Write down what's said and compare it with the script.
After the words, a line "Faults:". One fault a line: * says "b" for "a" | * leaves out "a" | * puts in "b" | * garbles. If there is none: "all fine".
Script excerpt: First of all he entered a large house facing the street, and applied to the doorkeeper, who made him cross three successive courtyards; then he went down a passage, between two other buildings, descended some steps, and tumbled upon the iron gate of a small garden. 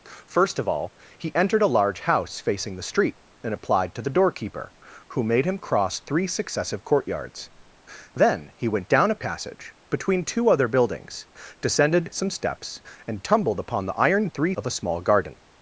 First of all he entered a large house facing the street, and applied to the doorkeeper, who made him cross three successive courtyards; then he went down a passage, between two other buildings, descended some steps, and tumbled upon the iron three of a small garden.
Faults:
* says "three" for "gate"